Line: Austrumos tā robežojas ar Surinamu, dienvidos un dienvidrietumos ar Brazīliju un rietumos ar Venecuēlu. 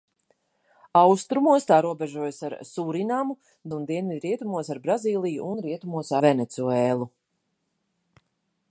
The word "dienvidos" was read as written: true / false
false